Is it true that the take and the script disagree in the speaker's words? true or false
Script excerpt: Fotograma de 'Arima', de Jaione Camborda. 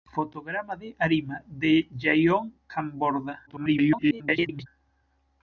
true